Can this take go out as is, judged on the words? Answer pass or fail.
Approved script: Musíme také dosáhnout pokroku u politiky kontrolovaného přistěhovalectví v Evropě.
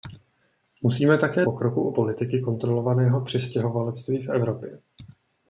fail